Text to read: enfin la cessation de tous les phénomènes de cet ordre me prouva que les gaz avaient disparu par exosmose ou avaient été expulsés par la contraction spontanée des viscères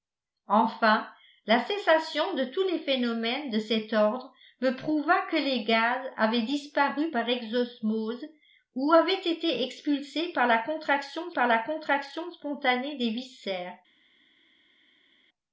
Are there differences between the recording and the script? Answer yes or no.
yes